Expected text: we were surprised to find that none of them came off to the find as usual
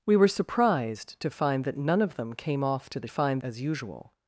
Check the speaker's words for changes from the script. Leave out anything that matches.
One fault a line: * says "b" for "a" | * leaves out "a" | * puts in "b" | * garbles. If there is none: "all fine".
all fine